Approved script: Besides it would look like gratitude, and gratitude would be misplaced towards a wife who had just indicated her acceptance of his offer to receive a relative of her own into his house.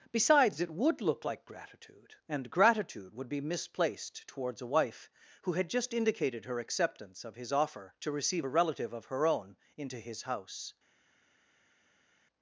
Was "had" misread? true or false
false